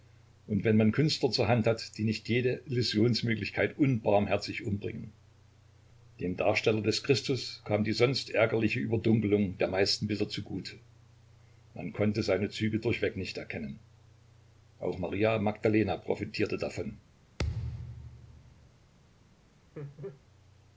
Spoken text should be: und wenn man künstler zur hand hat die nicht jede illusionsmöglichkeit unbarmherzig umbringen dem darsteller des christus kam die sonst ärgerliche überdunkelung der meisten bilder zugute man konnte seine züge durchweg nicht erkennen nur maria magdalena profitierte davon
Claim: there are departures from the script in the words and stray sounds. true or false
true